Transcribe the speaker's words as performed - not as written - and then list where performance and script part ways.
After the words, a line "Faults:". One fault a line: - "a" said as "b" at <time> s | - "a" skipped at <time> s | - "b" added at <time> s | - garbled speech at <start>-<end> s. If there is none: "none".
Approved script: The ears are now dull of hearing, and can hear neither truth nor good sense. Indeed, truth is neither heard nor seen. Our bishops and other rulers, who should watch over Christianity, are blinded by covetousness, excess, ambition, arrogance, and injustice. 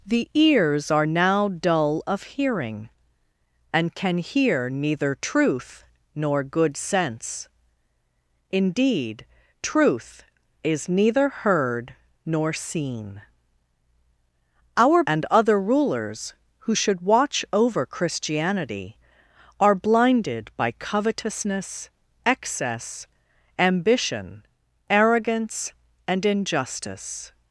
The ears are now dull of hearing, and can hear neither truth nor good sense. Indeed, truth is neither heard nor seen. Our and other rulers, who should watch over Christianity, are blinded by covetousness, excess, ambition, arrogance, and injustice.
Faults:
- "bishops" skipped at 15.0 s